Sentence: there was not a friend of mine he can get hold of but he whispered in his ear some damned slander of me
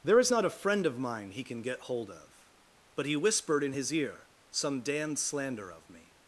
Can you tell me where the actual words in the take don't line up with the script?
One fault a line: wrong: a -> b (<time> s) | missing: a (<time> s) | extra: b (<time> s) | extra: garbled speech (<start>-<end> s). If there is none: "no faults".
wrong: was -> is (0.2 s)